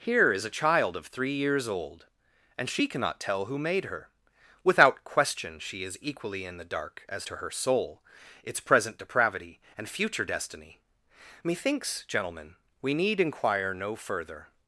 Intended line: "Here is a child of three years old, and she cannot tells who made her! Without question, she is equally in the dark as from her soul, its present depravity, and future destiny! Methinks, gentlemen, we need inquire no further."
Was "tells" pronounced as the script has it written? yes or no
no